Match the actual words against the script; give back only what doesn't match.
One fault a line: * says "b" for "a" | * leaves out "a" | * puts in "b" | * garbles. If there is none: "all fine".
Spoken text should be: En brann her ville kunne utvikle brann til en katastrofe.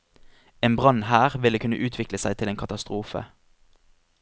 * says "seg" for "brann"